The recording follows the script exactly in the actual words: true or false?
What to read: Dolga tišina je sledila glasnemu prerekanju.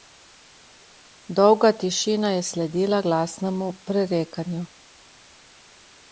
true